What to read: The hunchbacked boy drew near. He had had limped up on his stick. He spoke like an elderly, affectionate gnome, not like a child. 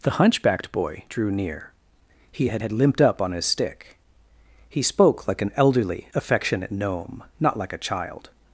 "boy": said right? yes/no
yes